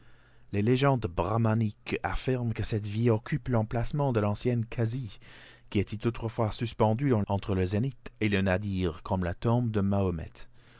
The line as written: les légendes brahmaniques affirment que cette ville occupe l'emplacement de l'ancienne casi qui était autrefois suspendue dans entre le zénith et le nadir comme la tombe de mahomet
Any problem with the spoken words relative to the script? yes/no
no